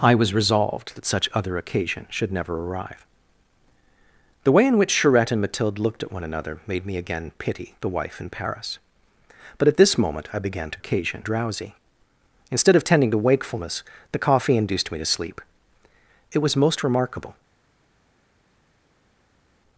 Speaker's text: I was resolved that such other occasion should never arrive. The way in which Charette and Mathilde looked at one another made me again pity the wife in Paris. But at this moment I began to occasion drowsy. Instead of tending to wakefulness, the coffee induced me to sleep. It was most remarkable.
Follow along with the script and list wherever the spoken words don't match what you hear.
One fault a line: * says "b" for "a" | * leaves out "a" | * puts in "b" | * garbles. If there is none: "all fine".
all fine